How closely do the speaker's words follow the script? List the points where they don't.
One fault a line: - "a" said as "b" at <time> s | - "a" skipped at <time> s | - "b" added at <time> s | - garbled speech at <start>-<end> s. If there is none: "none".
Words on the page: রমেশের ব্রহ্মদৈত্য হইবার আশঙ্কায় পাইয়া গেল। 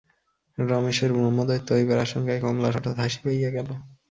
- "কমলার হঠাৎ হাসি" added at 2.4 s